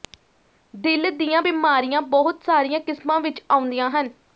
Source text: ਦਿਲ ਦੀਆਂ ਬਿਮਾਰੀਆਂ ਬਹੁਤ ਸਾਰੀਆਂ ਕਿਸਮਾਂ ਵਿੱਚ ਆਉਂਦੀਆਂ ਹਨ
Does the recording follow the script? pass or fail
pass